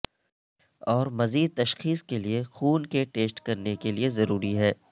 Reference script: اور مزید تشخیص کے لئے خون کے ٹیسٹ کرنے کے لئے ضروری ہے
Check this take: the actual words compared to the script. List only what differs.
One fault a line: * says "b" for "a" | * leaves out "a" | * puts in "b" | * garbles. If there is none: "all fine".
all fine